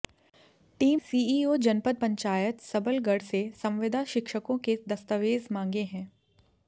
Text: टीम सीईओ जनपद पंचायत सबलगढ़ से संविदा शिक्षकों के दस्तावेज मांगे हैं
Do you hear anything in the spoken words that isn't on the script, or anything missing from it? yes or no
no